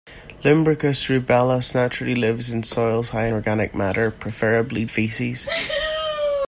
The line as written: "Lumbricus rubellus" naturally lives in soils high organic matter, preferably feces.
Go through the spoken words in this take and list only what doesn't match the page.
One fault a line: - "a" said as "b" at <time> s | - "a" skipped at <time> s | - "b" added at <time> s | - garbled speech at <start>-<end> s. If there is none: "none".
none